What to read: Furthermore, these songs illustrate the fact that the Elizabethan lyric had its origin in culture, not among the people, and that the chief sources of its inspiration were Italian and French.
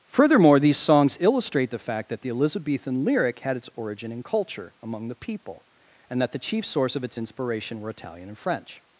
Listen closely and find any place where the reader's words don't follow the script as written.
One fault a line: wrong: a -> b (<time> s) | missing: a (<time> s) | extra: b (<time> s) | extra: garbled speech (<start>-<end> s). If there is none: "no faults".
missing: not (4.7 s)
wrong: sources -> source (6.6 s)